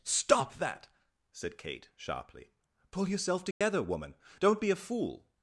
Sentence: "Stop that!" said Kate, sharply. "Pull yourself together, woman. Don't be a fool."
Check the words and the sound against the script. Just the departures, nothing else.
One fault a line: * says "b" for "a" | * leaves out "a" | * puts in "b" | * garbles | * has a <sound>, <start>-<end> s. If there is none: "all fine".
* has a dropout, 3.5-3.6 s